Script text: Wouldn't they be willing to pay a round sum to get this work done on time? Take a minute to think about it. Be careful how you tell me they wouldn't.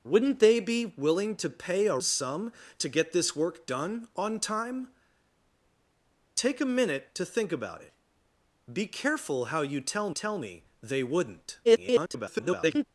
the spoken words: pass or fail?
fail